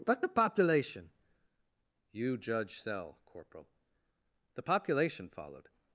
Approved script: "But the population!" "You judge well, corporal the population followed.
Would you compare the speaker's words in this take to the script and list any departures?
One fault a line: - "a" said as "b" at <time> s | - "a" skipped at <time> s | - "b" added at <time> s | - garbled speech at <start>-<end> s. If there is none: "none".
- "well" said as "cell" at 2.8 s